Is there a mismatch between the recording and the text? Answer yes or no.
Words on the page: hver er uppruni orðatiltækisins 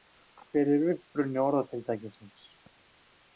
no